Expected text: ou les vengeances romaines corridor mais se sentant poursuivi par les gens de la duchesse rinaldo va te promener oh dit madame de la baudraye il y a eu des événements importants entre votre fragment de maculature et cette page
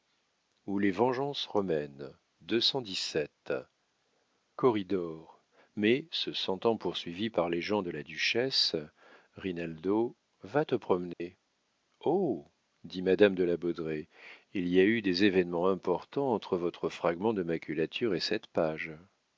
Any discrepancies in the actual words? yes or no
no